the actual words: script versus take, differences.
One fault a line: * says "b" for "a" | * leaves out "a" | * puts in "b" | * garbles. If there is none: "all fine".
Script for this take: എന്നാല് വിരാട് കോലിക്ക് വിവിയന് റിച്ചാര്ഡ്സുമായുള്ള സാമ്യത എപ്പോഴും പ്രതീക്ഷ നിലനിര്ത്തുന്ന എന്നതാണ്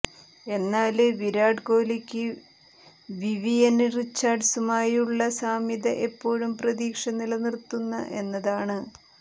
all fine